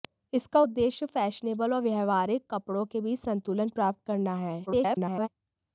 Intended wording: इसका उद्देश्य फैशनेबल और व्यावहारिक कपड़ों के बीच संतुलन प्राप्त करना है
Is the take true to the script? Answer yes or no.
no